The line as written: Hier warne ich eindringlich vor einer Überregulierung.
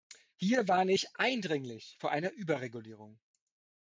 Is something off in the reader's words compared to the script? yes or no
no